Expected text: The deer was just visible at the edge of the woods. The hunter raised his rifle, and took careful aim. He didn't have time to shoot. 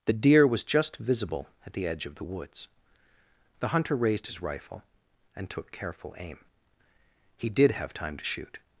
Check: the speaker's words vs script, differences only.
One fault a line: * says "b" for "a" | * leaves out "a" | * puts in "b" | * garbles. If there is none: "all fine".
* says "did" for "didn't"